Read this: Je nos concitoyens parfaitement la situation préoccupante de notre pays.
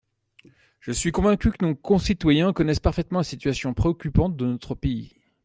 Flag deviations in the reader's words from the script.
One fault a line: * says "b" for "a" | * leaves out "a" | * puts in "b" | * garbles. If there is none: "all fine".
* puts in "suis convaincu que"
* puts in "connaissent"